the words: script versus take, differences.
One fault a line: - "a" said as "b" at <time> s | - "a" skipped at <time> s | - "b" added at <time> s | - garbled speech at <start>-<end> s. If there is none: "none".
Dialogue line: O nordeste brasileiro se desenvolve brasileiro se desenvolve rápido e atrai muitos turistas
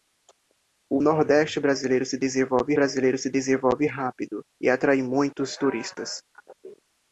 none